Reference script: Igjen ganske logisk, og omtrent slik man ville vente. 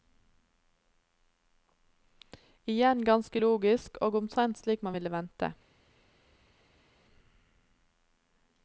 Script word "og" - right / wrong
right